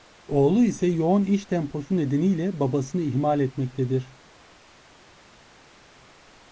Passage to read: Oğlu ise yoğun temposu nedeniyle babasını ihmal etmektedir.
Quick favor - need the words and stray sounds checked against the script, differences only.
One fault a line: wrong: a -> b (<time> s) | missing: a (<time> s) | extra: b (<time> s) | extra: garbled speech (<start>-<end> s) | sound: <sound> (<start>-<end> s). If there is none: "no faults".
extra: iş (1.2 s)